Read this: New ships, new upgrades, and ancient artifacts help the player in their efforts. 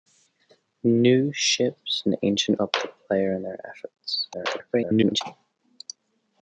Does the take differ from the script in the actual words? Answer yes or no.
yes